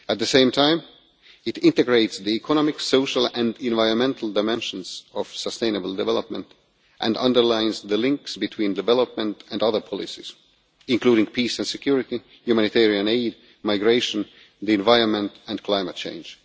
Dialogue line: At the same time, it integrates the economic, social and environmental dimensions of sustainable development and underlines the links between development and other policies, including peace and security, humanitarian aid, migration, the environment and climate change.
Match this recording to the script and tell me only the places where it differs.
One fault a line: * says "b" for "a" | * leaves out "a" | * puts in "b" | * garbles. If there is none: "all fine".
all fine